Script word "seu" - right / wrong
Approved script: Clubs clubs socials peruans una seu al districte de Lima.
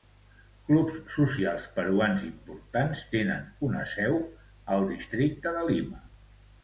right